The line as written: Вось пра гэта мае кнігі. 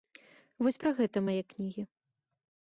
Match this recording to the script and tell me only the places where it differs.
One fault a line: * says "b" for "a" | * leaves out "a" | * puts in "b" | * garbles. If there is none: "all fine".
all fine